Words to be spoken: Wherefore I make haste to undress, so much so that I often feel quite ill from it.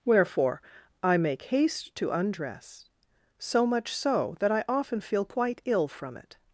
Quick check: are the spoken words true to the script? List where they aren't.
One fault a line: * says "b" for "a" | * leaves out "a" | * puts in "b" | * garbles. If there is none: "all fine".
all fine